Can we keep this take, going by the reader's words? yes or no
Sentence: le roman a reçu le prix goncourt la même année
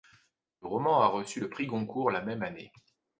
yes